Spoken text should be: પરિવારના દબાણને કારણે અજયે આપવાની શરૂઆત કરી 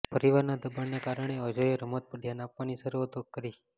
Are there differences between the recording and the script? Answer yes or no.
yes